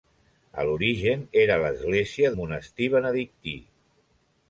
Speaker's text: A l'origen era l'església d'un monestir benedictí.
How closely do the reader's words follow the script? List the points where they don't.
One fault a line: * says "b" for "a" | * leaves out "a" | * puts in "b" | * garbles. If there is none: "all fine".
* leaves out "d'un"